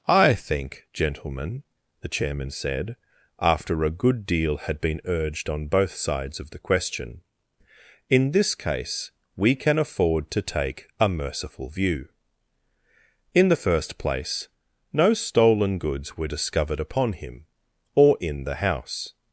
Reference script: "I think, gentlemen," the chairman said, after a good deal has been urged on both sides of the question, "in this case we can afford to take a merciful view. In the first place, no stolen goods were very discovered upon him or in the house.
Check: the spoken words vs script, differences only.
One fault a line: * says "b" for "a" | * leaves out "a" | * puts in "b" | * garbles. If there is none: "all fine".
* says "had" for "has"
* leaves out "very"